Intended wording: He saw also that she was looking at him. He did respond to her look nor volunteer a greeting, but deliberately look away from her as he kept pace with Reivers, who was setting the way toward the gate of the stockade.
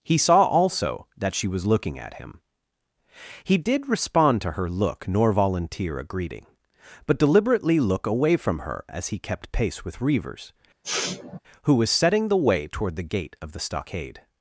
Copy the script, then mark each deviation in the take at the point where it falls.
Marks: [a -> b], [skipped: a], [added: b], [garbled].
He saw also that she was looking at him. He did respond to her look nor volunteer a greeting, but deliberately look away from her as he kept pace with Reivers, who was setting the way toward the gate of the stockade.